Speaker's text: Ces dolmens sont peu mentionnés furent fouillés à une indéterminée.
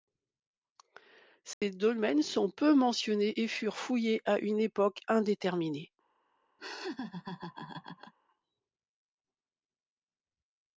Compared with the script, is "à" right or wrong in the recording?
right